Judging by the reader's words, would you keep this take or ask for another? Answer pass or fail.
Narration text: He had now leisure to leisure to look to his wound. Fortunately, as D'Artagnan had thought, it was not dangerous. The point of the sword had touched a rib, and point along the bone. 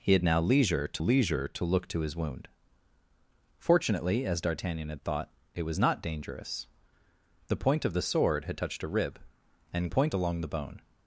pass